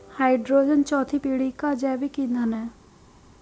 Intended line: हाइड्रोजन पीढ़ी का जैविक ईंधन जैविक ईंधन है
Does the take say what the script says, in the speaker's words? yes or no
no